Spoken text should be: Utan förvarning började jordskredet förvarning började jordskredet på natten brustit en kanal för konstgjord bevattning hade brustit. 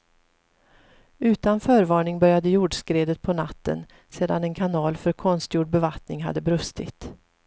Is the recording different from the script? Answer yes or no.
yes